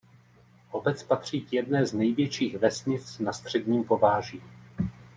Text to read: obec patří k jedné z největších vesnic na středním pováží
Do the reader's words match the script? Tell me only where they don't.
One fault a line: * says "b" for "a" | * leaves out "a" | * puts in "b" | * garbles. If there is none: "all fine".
all fine